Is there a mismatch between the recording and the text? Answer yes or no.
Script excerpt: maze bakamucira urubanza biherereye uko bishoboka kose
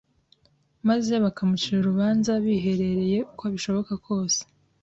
no